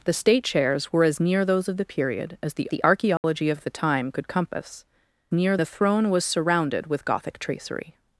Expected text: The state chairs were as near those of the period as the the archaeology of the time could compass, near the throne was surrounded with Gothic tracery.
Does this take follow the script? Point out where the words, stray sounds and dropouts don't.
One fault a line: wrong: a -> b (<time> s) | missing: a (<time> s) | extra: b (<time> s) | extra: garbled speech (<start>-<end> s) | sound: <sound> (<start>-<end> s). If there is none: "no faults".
sound: dropout (3.2-3.2 s)